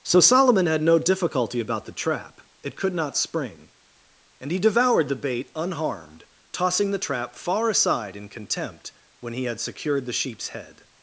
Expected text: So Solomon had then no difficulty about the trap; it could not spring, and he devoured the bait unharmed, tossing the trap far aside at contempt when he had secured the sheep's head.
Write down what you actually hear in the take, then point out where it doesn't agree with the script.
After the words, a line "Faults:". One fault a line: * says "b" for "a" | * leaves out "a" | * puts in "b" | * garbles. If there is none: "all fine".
So Solomon had no difficulty about the trap; it could not spring, and he devoured the bait unharmed, tossing the trap far aside in contempt when he had secured the sheep's head.
Faults:
* leaves out "then"
* says "in" for "at"